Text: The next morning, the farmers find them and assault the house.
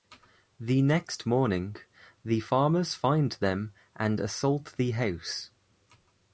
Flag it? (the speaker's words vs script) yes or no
no